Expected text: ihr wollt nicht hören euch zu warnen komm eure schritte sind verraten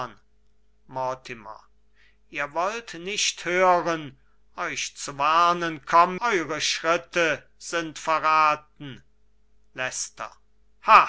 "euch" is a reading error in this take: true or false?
false